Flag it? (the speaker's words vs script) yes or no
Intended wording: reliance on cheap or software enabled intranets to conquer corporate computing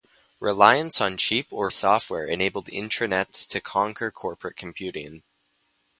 no